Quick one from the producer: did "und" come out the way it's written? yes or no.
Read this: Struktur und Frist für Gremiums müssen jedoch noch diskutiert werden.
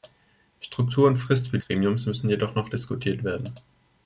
yes